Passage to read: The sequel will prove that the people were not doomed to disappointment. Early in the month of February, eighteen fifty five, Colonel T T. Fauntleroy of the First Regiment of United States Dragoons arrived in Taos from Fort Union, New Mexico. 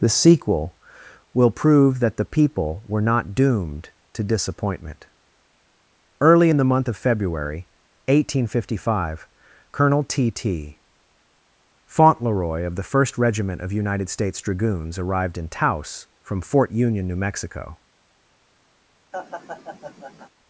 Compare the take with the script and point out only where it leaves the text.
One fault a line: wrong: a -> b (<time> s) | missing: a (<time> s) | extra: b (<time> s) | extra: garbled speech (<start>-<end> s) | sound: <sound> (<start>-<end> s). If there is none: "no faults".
sound: laugh (19.1-20.3 s)